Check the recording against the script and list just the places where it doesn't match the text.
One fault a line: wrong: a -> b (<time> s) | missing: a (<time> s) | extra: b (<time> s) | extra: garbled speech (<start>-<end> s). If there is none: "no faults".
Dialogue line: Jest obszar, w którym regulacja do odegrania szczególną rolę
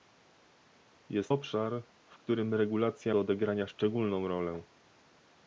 no faults